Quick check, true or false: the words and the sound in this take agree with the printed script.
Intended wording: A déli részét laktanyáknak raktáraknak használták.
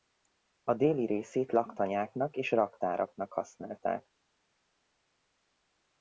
false